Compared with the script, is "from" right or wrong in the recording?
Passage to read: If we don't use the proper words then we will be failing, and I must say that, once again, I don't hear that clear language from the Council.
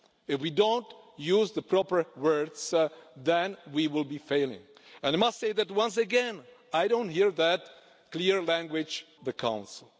wrong